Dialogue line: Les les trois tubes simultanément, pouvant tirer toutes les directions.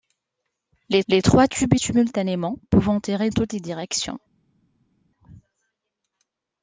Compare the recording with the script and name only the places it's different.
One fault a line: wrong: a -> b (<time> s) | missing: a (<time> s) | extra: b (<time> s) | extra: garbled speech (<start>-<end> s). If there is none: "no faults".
no faults